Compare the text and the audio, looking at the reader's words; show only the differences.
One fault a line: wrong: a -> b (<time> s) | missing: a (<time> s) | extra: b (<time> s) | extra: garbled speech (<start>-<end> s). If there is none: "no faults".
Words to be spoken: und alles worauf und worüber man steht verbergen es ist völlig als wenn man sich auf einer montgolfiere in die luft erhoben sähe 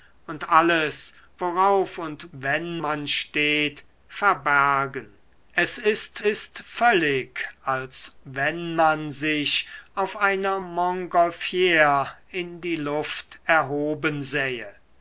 wrong: worüber -> wenn (2.3 s)
extra: ist (6.2 s)